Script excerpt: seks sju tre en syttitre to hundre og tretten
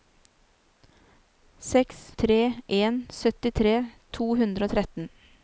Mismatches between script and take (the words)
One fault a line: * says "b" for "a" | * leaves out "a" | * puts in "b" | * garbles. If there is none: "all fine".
* leaves out "sju"